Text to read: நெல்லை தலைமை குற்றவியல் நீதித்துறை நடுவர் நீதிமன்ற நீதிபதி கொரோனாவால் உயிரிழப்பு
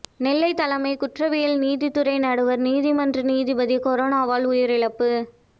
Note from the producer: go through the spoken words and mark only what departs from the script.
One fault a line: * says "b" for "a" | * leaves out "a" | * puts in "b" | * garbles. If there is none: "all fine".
all fine